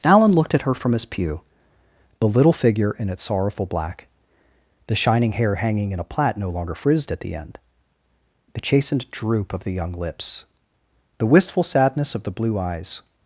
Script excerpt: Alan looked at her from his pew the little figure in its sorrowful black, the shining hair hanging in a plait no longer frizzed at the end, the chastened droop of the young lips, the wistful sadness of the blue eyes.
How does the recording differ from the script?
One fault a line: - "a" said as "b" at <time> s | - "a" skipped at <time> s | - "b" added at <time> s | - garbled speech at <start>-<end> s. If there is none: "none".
none